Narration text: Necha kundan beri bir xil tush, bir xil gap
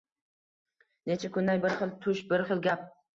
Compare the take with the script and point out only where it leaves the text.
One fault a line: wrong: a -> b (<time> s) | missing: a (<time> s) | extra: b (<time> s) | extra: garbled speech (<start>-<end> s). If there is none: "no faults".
missing: beri (1.6 s)